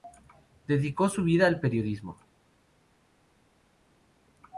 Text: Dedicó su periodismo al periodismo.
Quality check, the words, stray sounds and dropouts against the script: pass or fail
fail